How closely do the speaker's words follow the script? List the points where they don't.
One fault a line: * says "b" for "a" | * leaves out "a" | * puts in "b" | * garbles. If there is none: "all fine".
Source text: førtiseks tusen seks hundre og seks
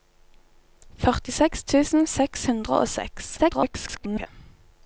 * garbles